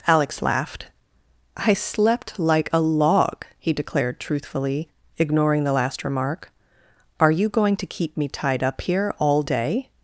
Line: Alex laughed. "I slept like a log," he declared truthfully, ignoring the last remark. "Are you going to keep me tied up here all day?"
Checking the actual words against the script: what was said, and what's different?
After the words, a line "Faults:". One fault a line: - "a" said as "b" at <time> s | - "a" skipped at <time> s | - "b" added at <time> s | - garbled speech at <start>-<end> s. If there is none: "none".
Alex laughed. "I slept like a log," he declared truthfully, ignoring the last remark. "Are you going to keep me tied up here all day?"
Faults:
none